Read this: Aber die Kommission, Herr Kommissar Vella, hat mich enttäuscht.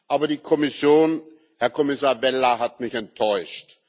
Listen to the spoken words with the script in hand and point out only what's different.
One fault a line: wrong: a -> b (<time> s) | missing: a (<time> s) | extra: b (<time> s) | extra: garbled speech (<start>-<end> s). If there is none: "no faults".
no faults